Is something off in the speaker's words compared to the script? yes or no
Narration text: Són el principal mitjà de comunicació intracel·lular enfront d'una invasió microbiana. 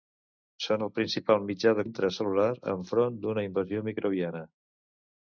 yes